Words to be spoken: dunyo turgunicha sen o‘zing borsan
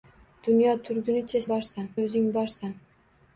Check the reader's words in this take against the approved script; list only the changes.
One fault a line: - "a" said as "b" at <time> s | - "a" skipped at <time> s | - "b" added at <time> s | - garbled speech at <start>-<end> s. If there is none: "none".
- "sen" said as "borsan" at 1.5 s